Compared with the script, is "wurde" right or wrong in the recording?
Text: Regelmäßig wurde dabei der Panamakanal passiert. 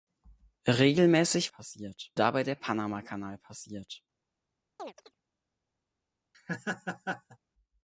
wrong